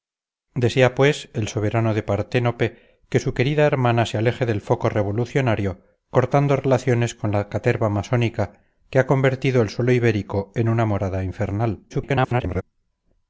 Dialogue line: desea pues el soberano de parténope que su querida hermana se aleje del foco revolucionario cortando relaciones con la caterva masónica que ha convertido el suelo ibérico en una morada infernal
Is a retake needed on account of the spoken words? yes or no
yes